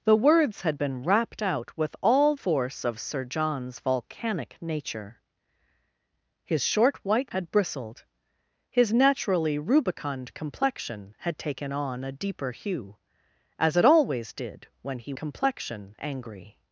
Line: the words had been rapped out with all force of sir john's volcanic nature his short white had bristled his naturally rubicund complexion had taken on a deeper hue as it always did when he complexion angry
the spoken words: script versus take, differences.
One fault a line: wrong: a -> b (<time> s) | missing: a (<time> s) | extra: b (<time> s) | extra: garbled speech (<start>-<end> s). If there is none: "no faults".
no faults